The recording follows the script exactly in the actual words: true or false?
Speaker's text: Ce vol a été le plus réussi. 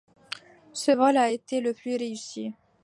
true